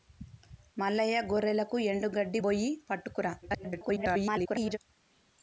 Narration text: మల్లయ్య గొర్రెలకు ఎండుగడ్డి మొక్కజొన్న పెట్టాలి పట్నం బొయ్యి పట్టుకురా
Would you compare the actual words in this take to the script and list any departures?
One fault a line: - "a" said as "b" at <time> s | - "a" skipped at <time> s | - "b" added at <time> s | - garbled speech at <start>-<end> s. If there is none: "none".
- "మొక్కజొన్న పెట్టాలి పట్నం" skipped at 2.4 s
- garbled speech at 3.4-4.8 s